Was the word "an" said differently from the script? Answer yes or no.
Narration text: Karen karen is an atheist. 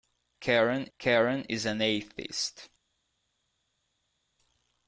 no